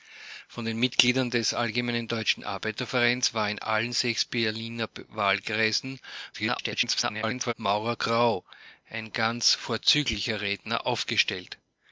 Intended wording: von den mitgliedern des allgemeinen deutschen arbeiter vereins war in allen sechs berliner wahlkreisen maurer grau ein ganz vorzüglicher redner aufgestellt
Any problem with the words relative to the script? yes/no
yes